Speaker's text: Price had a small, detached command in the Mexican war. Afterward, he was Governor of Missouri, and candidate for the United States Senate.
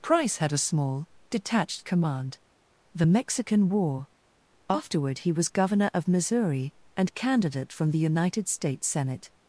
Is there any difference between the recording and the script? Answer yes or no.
yes